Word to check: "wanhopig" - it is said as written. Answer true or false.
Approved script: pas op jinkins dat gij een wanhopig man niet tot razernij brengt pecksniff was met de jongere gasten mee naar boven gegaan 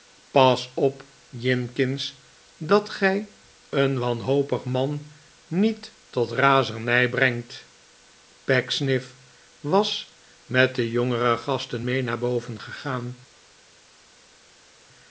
true